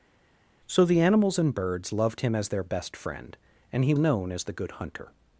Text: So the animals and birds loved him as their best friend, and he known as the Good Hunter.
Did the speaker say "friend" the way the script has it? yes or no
yes